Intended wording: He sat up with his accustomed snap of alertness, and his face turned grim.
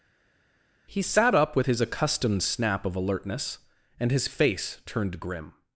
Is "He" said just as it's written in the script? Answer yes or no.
yes